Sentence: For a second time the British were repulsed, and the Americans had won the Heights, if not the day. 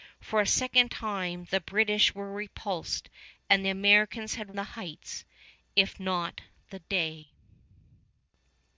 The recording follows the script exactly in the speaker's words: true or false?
false